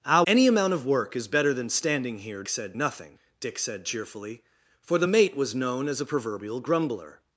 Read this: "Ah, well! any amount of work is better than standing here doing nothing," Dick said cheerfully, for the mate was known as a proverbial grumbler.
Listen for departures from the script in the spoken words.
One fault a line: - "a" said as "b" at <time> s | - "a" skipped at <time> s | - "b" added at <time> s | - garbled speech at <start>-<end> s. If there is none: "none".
- "well" skipped at 0.2 s
- "doing" said as "said" at 2.5 s